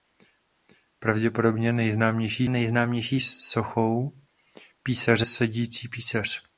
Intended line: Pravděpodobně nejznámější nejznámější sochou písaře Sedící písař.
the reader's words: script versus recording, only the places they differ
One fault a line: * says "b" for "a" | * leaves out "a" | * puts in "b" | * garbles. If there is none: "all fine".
all fine